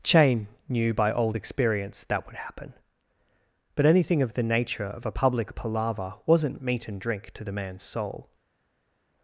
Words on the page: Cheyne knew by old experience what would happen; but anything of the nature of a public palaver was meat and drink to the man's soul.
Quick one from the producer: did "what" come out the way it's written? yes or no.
no